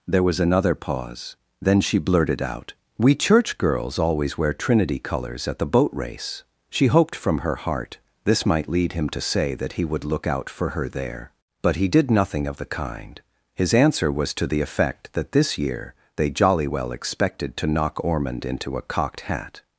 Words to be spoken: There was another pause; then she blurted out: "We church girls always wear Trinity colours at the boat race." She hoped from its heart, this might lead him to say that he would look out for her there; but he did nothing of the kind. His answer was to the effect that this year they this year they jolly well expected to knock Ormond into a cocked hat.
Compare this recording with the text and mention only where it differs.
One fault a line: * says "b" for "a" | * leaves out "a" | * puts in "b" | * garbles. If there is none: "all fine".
* says "her" for "its"
* leaves out "this year they"